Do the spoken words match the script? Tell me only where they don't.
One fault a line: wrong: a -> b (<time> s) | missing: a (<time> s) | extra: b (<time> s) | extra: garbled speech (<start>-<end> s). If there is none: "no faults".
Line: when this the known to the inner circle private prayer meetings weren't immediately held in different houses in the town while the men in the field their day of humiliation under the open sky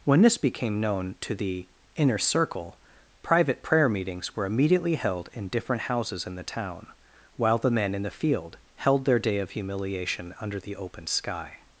wrong: the -> became (0.4 s)
wrong: weren't -> were (4.3 s)
extra: held (8.8 s)